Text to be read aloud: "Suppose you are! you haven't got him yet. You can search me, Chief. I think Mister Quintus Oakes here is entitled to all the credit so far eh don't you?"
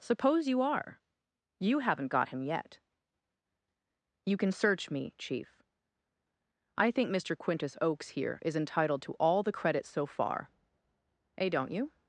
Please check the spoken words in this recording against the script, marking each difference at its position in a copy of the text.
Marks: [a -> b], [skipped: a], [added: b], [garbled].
"Suppose you are! you haven't got him yet. You can search me, Chief. I think Mister Quintus Oakes here is entitled to all the credit so far eh don't you?"